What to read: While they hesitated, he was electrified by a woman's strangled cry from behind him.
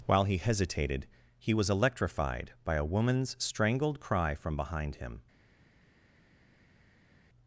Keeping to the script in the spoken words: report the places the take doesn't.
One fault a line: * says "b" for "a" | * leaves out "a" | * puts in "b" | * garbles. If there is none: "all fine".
* says "he" for "they"